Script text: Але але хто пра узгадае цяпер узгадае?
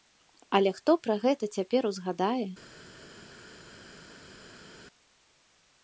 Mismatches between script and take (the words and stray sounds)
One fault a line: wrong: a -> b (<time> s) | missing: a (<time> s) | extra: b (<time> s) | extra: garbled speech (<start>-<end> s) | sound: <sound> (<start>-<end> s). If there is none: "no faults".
missing: але (0.7 s)
wrong: узгадае -> гэта (1.3 s)